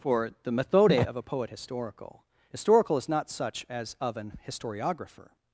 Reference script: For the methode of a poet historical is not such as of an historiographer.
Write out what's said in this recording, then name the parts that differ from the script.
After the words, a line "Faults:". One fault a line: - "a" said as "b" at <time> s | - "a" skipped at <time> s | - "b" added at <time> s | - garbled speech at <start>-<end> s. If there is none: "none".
For the methode of a poet historical historical is not such as of an historiographer.
Faults:
- "historical" added at 2.5 s